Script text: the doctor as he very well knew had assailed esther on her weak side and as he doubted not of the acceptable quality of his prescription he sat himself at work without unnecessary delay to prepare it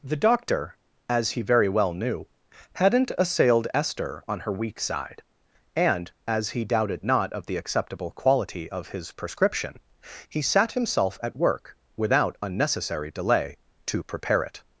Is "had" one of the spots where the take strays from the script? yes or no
yes